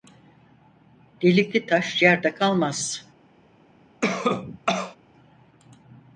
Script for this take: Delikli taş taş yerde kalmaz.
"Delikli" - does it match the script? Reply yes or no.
yes